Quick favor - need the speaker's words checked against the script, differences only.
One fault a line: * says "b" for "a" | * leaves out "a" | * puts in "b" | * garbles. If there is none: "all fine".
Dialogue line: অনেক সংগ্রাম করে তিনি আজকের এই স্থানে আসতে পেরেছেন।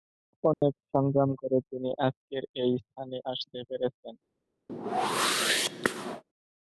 all fine